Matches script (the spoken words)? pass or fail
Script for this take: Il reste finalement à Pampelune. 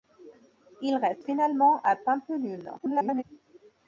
fail